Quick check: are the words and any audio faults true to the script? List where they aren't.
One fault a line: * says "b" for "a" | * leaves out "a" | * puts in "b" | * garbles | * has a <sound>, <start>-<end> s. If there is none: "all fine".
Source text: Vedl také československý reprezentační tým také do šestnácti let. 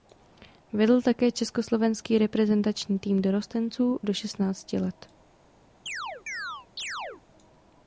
* says "dorostenců" for "také"
* has a chirp, 5.9-7.2 s